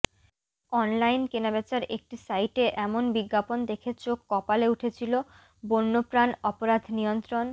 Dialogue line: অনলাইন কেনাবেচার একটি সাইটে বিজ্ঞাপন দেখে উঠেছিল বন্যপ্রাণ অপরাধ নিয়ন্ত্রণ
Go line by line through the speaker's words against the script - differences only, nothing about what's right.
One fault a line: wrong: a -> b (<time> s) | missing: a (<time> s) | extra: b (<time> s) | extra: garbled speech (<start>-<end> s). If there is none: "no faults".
extra: এমন (2.8 s)
extra: চোখ কপালে (4.0 s)